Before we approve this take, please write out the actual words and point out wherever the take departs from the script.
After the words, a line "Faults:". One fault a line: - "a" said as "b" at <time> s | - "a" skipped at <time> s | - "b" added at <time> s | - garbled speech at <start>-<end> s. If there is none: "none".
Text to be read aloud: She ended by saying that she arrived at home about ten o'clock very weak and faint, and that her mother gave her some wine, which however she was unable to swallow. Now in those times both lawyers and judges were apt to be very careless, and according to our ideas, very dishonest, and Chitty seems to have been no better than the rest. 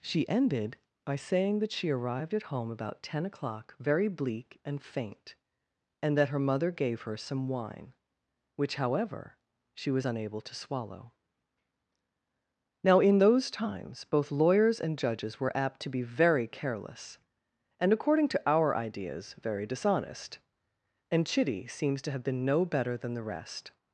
She ended by saying that she arrived at home about ten o'clock very bleak and faint, and that her mother gave her some wine, which however she was unable to swallow. Now in those times both lawyers and judges were apt to be very careless, and according to our ideas, very dishonest, and Chitty seems to have been no better than the rest.
Faults:
- "weak" said as "bleak" at 4.1 s